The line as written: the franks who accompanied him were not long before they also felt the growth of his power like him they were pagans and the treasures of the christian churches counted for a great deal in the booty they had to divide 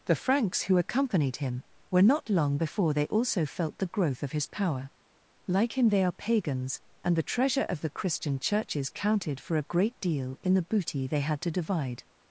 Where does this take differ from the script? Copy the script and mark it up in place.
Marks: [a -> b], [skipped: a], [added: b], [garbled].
the franks who accompanied him were not long before they also felt the growth of his power like him they [were -> are] pagans and the [treasures -> treasure] of the christian churches counted for a great deal in the booty they had to divide